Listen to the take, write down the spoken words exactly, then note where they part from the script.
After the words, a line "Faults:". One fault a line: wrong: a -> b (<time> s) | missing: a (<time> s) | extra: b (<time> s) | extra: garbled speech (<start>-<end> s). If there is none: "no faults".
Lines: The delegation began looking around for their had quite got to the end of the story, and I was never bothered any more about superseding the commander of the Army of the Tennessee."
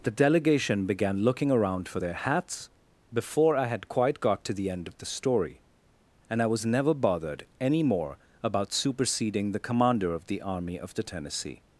The delegation began looking around for their hats before I had quite got to the end of the story, and I was never bothered any more about superseding the commander of the Army of the Tennessee."
Faults:
extra: hats before I (2.1 s)